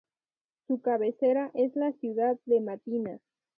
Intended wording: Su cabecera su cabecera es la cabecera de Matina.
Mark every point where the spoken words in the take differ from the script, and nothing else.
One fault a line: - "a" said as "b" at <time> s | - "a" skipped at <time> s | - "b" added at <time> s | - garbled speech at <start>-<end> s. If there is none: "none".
- "su cabecera" skipped at 1.5 s
- "cabecera" said as "ciudad" at 1.9 s